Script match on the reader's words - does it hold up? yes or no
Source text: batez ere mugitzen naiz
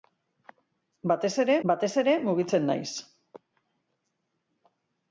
no